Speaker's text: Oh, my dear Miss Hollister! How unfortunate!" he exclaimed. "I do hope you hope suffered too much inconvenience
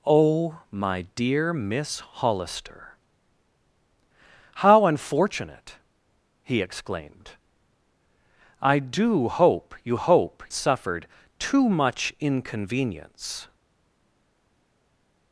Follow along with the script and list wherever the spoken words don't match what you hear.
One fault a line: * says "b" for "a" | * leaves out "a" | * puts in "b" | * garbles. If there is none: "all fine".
all fine